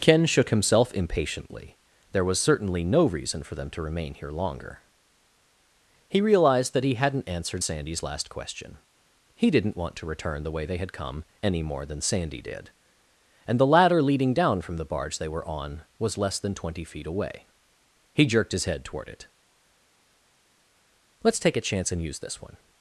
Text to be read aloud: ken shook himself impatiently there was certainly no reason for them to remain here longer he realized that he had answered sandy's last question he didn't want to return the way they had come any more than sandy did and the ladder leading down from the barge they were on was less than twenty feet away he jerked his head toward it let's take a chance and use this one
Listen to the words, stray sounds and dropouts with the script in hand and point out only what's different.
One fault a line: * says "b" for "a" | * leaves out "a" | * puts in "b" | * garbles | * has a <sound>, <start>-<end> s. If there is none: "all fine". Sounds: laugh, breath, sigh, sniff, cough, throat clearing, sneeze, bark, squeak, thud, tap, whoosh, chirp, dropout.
* says "hadn't" for "had"